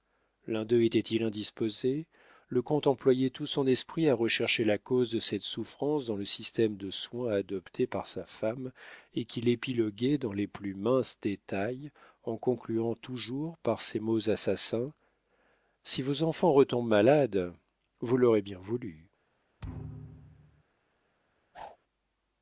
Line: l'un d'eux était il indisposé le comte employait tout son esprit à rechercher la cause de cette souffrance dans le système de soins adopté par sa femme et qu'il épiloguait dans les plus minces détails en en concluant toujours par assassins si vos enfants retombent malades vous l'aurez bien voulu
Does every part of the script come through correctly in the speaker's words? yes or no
no